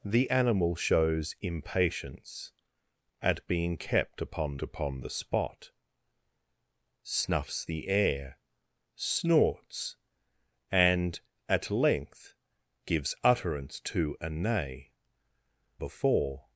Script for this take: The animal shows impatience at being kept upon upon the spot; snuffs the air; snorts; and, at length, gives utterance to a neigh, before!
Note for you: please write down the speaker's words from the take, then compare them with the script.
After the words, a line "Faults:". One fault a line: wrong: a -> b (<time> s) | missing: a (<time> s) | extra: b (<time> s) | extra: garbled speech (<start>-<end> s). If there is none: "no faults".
The animal shows impatience at being kept upon upon the spot; snuffs the air; snorts; and, at length, gives utterance to a neigh, before!
Faults:
no faults